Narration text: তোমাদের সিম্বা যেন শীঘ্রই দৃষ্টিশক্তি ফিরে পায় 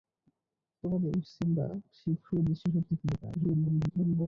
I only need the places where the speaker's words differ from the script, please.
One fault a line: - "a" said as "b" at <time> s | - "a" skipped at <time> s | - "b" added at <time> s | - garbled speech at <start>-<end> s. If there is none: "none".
- "যেন" skipped at 1.6 s
- garbled speech at 3.3-4.3 s